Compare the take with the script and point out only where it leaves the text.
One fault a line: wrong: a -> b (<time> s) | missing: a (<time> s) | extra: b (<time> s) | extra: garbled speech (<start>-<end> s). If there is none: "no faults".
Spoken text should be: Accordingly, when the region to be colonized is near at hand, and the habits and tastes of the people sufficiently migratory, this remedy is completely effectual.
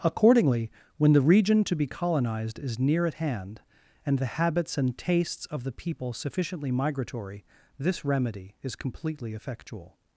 no faults